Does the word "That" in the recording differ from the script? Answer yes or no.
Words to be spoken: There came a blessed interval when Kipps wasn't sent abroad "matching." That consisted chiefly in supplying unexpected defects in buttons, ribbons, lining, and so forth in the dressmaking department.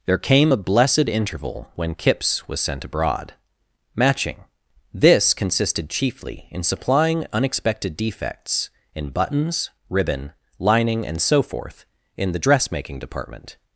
yes